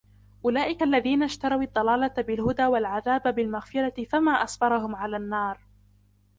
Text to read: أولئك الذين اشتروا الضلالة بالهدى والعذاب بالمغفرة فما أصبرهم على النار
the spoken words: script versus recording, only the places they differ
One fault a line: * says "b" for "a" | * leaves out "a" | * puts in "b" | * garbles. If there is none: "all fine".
all fine